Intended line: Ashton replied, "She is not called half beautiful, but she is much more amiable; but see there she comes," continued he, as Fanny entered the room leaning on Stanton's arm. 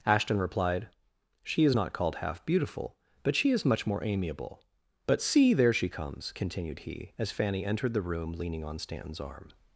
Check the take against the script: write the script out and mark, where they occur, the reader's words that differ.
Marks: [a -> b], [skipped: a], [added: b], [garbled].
Ashton replied, "She is not called half beautiful, but she is much more amiable; but see there she comes," continued he, as Fanny entered the room leaning on Stanton's arm.